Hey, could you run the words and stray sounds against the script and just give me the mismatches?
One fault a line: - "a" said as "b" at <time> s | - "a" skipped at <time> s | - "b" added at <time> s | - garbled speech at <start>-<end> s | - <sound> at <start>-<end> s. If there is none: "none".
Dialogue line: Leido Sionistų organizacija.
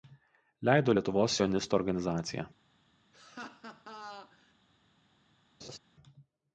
- "Lietuvos" added at 1.0 s
- laugh at 3.1-4.5 s
- laugh at 5.6-5.8 s